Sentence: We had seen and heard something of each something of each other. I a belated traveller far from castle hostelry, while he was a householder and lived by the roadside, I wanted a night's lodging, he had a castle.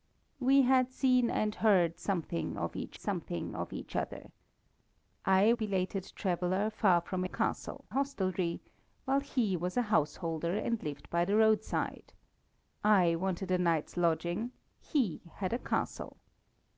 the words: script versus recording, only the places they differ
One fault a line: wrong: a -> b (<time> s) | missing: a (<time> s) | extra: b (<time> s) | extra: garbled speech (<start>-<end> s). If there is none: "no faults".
no faults